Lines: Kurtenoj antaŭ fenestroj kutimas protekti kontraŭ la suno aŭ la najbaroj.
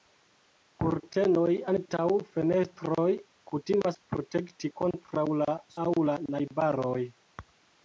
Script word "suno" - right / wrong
wrong